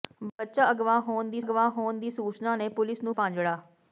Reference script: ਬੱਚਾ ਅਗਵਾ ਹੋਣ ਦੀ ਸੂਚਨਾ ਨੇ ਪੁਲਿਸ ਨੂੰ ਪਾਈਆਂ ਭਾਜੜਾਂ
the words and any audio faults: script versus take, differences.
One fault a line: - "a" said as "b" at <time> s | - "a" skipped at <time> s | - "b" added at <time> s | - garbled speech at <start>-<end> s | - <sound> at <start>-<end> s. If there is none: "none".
- "ਅਗਵਾ ਹੋਣ ਦੀ" added at 1.4 s
- "ਪਾਈਆਂ" skipped at 3.2 s